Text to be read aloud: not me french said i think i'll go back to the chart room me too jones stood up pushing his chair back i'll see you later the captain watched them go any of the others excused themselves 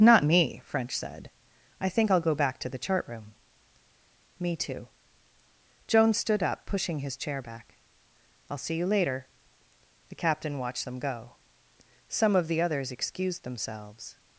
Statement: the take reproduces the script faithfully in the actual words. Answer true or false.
false